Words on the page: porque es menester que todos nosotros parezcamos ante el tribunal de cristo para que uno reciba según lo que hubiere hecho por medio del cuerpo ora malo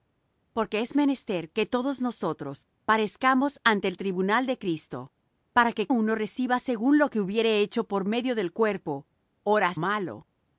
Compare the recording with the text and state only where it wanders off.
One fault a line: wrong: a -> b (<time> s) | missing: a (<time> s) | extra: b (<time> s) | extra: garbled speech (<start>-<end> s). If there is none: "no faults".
no faults